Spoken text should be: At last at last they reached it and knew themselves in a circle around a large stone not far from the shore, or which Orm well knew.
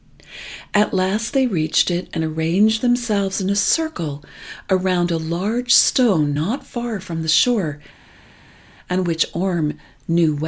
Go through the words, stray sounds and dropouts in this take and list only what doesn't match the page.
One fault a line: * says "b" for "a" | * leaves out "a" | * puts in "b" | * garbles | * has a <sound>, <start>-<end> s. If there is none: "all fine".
* leaves out "at last"
* says "arranged" for "knew"
* says "and" for "or"